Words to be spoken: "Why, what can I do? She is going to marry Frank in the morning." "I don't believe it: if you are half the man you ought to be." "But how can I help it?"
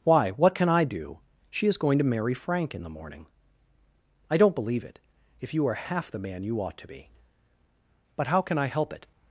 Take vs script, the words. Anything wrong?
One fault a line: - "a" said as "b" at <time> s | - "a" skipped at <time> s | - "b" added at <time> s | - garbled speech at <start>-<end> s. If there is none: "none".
none